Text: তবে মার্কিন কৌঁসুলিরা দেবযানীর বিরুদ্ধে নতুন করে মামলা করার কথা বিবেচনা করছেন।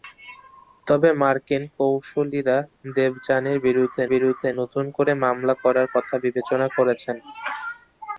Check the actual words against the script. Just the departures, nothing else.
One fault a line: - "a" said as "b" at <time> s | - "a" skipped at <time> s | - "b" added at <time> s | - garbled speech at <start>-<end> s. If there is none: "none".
- "বিরুদ্ধে" added at 4.1 s